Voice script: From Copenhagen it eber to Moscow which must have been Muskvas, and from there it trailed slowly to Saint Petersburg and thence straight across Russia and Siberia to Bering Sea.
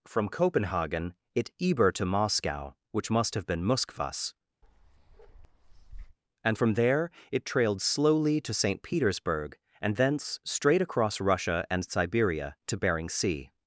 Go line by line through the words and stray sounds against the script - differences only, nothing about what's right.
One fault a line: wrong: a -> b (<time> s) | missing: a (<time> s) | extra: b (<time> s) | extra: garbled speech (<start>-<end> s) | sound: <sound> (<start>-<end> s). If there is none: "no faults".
sound: bark (4.6-6.2 s)